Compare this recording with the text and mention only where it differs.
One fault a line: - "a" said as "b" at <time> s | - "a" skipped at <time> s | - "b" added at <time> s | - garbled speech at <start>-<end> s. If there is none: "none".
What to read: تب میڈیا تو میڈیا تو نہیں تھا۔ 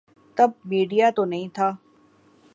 - "میڈیا تو" skipped at 1.2 s